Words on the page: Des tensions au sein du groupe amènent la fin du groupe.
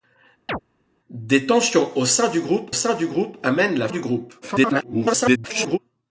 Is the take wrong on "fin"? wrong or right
wrong